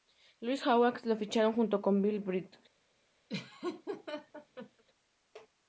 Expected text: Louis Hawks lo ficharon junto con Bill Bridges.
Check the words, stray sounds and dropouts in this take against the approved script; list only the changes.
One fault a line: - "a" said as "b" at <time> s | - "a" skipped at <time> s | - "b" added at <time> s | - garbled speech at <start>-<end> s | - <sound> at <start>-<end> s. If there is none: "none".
- laugh at 3.3-4.8 s